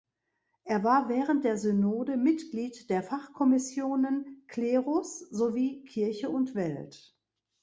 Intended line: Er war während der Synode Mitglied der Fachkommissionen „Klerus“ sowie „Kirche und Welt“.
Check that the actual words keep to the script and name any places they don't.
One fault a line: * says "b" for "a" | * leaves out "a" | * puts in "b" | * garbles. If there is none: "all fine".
all fine